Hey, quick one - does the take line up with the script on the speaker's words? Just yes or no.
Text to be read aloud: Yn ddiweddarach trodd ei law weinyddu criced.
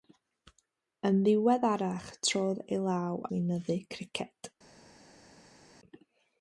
yes